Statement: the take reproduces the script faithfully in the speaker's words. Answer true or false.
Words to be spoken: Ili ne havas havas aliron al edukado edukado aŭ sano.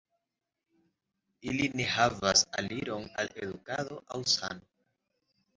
false